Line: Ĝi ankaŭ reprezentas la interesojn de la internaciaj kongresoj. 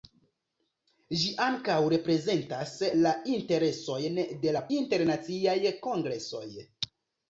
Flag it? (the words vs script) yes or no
no